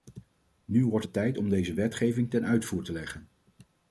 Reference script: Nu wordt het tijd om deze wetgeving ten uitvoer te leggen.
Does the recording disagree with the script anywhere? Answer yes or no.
no